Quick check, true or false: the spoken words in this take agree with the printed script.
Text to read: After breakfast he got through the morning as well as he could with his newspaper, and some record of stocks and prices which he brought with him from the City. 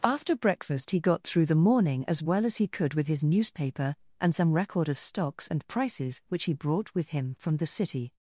true